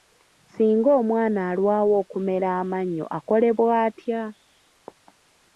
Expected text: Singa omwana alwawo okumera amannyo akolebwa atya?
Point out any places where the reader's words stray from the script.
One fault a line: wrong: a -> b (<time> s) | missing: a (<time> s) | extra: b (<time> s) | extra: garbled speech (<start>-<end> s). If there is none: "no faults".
no faults